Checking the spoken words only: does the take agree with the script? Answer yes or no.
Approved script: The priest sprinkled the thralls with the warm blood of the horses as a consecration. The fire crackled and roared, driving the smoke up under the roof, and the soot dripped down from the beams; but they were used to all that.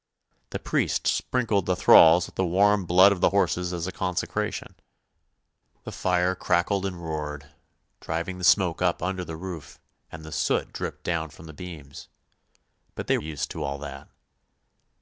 no